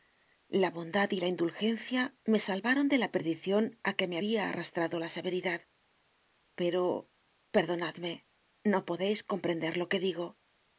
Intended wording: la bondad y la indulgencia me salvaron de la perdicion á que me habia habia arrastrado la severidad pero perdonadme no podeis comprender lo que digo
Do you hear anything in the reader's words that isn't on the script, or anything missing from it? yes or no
yes